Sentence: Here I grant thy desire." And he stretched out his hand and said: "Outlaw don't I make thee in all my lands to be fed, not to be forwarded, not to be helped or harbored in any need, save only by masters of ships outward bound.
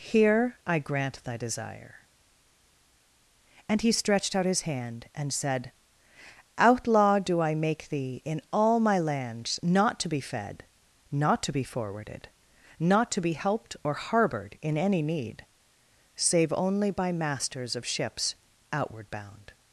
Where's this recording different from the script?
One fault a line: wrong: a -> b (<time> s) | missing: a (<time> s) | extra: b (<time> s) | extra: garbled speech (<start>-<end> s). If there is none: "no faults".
wrong: don't -> do (7.2 s)
extra: not (9.6 s)